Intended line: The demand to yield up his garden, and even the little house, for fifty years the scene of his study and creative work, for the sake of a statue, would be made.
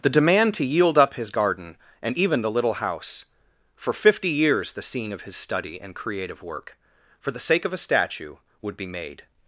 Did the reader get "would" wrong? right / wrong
right